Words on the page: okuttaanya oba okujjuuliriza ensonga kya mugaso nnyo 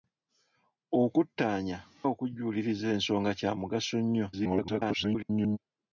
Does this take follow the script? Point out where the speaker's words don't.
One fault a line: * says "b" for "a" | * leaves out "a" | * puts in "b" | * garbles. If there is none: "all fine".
* leaves out "oba"
* garbles